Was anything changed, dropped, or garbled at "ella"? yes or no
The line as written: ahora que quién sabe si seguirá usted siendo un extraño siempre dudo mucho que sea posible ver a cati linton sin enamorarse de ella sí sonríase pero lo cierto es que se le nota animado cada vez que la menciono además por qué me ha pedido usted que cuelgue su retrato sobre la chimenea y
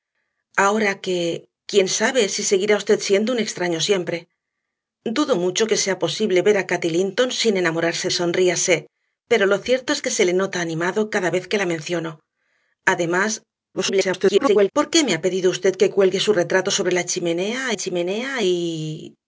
yes